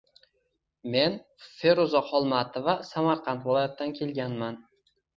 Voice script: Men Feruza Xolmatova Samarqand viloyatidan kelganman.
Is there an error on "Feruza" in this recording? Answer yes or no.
no